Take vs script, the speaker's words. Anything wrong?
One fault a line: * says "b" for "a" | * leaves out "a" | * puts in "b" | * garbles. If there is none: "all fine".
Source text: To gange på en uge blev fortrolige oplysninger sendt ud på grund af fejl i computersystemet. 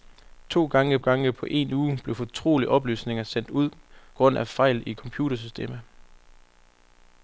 * puts in "gange"
* leaves out "på"